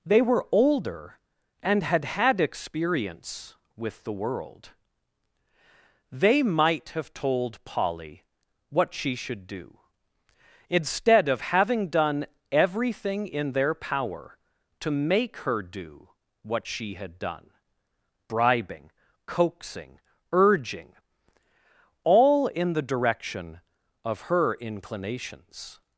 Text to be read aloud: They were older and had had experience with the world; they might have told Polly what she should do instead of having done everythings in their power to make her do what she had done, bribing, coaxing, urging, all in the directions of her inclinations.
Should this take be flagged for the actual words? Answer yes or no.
yes